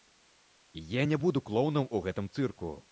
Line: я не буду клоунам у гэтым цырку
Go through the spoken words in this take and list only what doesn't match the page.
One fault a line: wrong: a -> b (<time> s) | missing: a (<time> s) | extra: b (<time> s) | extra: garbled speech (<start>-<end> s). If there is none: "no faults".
no faults